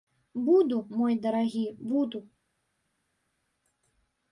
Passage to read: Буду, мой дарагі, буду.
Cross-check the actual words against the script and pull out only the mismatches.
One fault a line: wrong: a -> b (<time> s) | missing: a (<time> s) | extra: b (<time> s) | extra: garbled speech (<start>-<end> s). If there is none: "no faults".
no faults